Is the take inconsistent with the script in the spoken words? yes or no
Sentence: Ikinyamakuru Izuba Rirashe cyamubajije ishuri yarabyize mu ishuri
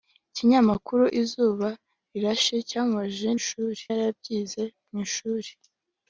no